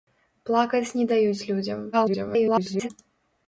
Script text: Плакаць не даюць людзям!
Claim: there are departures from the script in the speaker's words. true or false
true